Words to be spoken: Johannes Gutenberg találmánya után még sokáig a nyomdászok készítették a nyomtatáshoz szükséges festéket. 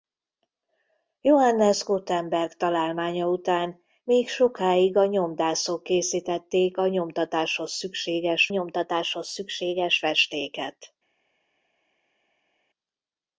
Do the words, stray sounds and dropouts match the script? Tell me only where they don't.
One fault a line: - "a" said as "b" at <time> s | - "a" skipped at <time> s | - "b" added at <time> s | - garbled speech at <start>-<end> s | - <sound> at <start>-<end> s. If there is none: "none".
- "nyomtatáshoz szükséges" added at 8.5 s